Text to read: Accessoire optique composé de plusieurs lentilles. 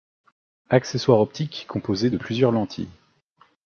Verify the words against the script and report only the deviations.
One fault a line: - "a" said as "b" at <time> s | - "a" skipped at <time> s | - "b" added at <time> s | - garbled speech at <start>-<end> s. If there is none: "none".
none